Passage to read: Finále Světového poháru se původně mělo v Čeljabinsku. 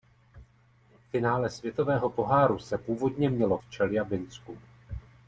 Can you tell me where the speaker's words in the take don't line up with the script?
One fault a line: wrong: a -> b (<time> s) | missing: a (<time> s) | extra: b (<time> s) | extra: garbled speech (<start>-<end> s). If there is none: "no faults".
no faults